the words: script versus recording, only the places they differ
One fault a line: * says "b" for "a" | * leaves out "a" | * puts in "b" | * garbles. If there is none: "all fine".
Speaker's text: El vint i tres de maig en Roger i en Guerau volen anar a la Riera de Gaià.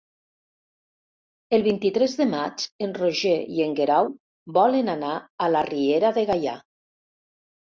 all fine